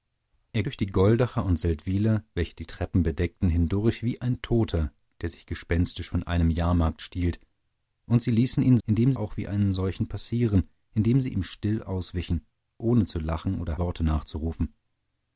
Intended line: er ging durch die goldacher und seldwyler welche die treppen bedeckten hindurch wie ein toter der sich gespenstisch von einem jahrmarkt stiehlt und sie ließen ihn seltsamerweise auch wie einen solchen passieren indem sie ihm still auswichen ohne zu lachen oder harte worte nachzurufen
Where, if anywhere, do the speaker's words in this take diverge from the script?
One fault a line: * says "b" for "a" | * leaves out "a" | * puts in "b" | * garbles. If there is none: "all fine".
* leaves out "ging"
* says "indem" for "seltsamerweise"
* leaves out "harte"